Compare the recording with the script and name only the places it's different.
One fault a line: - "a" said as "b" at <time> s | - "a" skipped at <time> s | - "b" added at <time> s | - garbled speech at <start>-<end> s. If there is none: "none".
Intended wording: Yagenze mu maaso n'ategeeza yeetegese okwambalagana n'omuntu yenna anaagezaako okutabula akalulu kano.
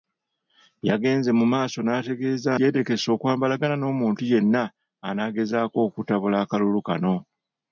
none